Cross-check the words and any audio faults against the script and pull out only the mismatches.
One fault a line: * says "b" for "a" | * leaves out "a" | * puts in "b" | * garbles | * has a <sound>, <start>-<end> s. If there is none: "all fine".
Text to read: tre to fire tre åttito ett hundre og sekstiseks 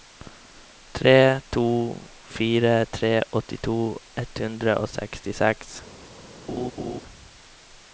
* has a laugh, 6.5-7.0 s